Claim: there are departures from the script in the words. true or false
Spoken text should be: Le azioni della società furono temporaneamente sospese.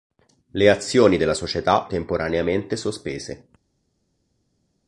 true